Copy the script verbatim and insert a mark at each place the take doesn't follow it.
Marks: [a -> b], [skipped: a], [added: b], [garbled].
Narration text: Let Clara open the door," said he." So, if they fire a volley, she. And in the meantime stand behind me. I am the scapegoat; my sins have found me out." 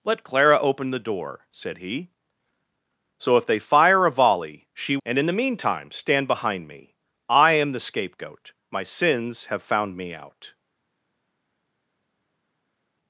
Let Clara open the door," said he." So, if they fire a volley, she. And in the meantime stand behind me. I am the scapegoat; my sins have found me out."